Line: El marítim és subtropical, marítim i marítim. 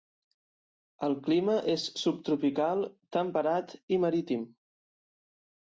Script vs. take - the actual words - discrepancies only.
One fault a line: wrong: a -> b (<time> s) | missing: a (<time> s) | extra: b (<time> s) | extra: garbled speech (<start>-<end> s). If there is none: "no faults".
wrong: marítim -> clima (1.3 s)
wrong: marítim -> temperat (3.2 s)